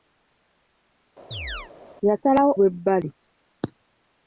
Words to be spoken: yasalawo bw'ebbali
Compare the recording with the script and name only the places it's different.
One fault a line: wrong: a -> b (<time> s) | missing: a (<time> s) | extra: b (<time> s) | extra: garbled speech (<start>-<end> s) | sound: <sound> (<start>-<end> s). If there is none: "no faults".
sound: chirp (1.3-1.7 s)